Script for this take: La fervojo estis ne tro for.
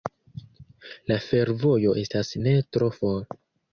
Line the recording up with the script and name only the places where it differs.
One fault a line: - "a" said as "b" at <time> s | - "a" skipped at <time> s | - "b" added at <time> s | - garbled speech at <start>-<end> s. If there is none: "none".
- "estis" said as "estas" at 2.0 s